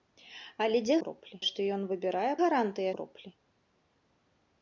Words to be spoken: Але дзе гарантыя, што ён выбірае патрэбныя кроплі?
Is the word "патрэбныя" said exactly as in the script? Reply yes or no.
no